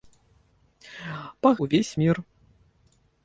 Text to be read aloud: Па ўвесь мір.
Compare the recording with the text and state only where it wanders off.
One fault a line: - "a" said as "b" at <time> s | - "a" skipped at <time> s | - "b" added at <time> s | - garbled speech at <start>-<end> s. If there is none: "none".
none